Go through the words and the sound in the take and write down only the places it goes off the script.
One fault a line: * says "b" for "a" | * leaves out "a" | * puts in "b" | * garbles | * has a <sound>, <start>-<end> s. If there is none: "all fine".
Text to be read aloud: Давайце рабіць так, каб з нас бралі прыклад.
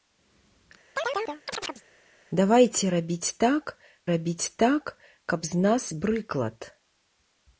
* has a chirp, 1.0-1.9 s
* puts in "рабіць так"
* leaves out "бралі"